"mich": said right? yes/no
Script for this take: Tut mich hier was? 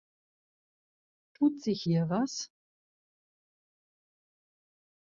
no